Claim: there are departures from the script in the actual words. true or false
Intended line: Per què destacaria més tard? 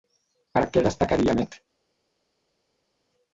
true